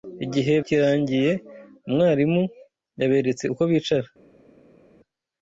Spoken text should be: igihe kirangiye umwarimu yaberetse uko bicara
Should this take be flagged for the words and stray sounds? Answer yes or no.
no